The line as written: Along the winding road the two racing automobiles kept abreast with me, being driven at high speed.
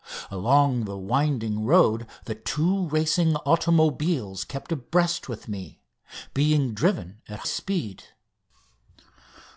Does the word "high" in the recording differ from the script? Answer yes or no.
yes